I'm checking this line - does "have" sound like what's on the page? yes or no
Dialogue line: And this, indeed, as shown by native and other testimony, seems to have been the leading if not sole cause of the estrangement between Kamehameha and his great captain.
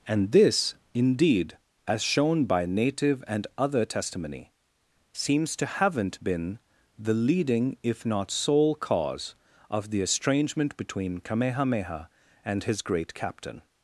no